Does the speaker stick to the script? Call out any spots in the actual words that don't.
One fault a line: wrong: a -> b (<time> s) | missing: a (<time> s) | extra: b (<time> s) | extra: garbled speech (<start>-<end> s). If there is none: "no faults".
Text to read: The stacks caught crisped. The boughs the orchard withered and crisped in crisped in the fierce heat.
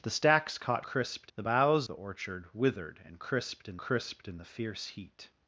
no faults